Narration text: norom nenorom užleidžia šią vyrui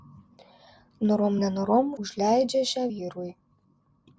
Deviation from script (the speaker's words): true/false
false